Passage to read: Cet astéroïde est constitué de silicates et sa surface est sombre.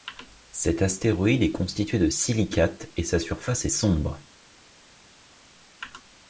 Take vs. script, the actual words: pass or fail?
pass